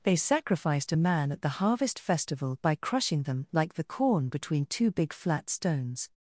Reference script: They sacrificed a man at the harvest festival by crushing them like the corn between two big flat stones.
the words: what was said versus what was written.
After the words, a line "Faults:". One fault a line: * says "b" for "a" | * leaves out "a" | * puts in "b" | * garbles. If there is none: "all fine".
They sacrificed a man at the harvest festival by crushing them like the corn between two big flat stones.
Faults:
all fine